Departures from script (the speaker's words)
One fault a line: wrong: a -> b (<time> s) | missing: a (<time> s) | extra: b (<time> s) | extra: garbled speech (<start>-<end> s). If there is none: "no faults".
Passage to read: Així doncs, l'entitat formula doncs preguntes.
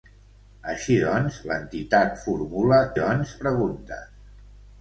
no faults